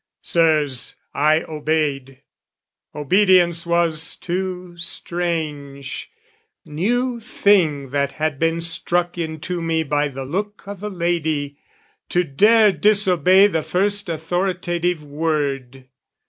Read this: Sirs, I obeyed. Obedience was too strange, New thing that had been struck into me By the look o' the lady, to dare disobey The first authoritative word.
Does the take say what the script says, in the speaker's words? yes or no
yes